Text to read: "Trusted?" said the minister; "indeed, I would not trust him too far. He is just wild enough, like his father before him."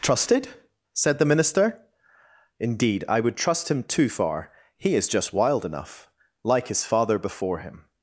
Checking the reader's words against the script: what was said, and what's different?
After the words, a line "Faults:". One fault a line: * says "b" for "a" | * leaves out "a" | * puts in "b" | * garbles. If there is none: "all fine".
"Trusted?" said the minister; "indeed, I would trust him too far. He is just wild enough, like his father before him."
Faults:
* leaves out "not"